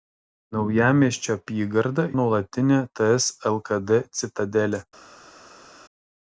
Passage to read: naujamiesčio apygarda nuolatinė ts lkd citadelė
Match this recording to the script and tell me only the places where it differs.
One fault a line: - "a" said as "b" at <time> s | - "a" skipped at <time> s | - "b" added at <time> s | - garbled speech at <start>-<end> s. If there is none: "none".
none